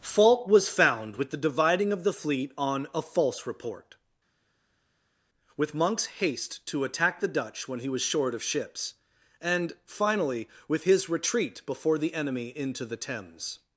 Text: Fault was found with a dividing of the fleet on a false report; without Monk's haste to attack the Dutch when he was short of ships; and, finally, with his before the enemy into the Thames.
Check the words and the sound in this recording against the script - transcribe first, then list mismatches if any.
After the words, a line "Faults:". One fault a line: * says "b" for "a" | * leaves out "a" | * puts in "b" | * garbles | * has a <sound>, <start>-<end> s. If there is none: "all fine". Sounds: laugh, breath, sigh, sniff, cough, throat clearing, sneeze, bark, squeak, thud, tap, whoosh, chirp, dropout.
Fault was found with the dividing of the fleet on a false report; with Monk's haste to attack the Dutch when he was short of ships; and, finally, with his retreat before the enemy into the Thames.
Faults:
* says "the" for "a"
* says "with" for "without"
* puts in "retreat"